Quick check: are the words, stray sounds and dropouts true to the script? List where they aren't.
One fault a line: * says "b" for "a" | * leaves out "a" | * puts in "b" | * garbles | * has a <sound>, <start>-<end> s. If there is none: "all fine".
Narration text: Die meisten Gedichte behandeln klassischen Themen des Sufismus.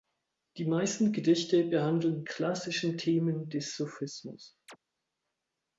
* has a chirp, 4.7-4.8 s